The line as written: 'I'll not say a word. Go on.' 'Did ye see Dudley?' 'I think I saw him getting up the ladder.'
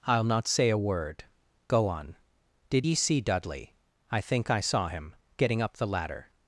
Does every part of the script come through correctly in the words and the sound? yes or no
yes